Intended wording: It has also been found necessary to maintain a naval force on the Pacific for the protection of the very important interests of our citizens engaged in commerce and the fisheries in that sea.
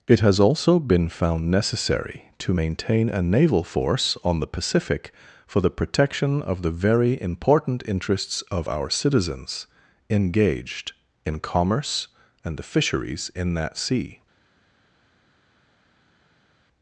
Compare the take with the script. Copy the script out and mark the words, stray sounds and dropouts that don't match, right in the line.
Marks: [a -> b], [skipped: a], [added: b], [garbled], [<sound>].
It has also been found necessary to maintain a naval force on the Pacific for the protection of the very important interests of our citizens engaged in commerce and the fisheries in that sea.